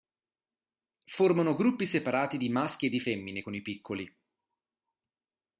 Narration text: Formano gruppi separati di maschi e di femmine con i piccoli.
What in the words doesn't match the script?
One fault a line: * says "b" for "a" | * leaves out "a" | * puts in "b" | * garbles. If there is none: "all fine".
all fine